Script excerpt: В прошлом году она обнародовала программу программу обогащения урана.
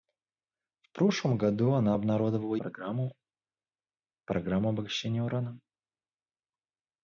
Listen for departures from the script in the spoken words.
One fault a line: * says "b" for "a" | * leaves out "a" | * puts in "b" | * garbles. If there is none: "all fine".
all fine